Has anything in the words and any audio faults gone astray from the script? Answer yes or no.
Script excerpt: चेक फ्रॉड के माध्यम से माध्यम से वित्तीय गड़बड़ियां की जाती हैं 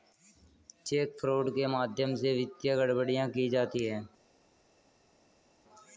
yes